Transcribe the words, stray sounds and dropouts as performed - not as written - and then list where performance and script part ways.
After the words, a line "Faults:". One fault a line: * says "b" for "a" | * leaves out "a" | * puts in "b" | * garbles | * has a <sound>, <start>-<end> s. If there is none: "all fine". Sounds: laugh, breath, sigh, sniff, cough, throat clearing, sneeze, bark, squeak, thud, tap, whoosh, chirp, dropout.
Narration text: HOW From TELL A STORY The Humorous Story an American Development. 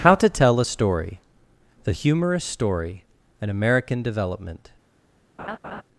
HOW TO TELL A STORY The Humorous Story an American Development.
Faults:
* says "TO" for "From"
* has a laugh, 5.4-5.8 s